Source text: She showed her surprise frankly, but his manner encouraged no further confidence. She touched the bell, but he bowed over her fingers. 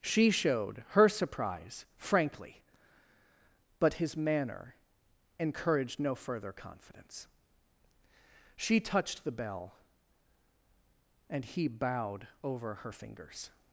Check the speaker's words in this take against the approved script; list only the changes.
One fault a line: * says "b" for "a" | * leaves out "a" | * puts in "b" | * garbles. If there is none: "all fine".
* says "and" for "but"